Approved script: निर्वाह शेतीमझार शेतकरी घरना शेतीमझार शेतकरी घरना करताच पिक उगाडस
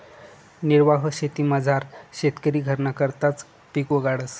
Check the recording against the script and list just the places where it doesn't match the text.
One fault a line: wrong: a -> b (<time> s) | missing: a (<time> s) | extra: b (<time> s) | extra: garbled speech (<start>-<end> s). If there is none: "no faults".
missing: शेतीमझार शेतकरी घरना (2.9 s)